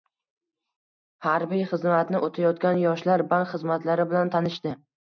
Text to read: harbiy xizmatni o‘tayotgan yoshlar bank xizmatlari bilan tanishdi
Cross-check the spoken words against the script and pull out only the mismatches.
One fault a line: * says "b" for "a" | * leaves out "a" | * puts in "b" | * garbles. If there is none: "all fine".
all fine